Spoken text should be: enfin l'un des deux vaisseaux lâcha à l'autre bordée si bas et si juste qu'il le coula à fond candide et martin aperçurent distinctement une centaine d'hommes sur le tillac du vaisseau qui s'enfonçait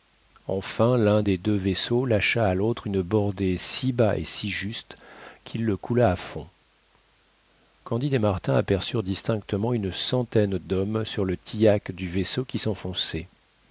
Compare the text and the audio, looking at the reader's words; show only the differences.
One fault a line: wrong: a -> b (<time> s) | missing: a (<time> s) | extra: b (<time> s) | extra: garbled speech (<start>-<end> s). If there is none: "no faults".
extra: une (2.9 s)